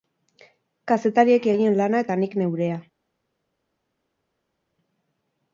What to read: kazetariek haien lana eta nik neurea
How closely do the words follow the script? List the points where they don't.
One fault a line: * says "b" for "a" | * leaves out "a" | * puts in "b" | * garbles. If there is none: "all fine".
all fine